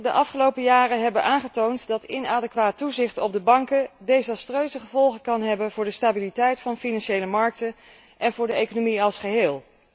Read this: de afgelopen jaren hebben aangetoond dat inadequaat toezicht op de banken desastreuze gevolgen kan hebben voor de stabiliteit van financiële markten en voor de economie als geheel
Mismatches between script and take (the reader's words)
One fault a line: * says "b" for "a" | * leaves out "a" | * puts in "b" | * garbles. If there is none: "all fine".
all fine